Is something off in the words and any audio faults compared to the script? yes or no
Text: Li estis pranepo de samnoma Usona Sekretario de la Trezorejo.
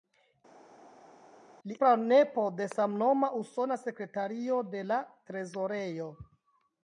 yes